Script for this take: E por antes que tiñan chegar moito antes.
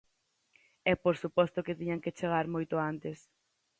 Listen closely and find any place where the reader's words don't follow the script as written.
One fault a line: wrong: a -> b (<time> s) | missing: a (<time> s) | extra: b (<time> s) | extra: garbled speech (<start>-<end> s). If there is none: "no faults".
wrong: antes -> suposto (1.2 s)
extra: que (2.0 s)